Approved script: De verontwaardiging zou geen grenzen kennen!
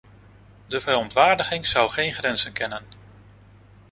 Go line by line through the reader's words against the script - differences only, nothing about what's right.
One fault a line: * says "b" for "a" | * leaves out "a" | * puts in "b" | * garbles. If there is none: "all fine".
all fine